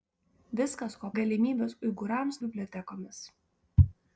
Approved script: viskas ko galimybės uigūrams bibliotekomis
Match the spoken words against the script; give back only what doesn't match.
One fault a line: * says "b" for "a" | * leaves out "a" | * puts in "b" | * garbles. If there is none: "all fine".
all fine